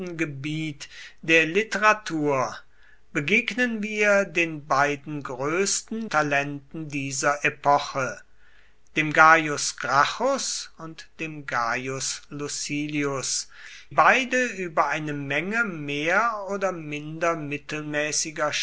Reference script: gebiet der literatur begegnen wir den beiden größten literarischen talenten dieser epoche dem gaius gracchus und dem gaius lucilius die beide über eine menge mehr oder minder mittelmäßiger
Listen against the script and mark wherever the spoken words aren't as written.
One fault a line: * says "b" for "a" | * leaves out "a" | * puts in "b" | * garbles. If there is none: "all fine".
* leaves out "literarischen"
* leaves out "die"